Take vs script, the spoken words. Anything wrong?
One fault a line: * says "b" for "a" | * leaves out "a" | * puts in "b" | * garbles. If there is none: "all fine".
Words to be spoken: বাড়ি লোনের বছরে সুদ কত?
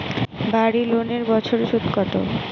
all fine